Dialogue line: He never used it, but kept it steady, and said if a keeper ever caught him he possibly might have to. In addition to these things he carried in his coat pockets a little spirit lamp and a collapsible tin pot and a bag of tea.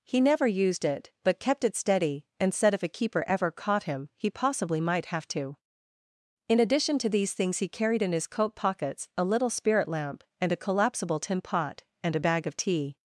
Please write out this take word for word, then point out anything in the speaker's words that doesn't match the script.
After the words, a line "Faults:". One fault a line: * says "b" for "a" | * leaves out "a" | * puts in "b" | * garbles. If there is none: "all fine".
He never used it, but kept it steady, and said if a keeper ever caught him he possibly might have to. In addition to these things he carried in his coat pockets a little spirit lamp and a collapsible tin pot and a bag of tea.
Faults:
all fine